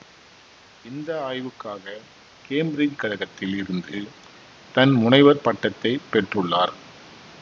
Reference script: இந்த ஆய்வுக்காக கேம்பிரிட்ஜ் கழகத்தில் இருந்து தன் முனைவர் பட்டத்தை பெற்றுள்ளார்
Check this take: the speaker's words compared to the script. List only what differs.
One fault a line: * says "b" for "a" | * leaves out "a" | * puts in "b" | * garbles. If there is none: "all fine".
all fine